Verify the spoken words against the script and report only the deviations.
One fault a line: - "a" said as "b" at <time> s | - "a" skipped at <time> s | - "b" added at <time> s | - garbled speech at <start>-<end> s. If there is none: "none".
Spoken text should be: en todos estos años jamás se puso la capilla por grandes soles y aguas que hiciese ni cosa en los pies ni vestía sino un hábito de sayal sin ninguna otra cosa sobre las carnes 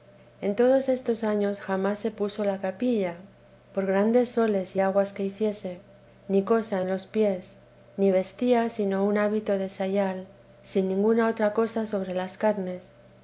none